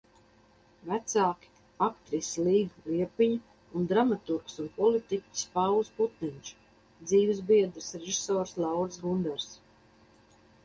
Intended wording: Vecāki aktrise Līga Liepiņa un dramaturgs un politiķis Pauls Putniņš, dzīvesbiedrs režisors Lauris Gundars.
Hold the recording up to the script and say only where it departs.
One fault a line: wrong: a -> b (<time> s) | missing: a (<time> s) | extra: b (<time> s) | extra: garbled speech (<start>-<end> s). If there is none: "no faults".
no faults